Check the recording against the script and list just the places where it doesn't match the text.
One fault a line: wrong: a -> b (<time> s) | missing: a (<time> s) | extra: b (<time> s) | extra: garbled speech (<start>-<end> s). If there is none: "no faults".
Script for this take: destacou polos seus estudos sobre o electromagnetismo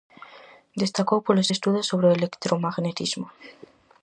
missing: seus (1.5 s)